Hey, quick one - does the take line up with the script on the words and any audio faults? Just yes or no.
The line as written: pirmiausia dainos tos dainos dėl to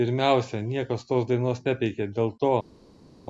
no